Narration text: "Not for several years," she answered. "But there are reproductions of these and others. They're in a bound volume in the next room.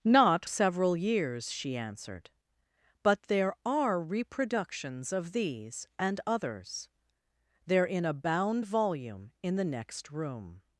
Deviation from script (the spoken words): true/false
true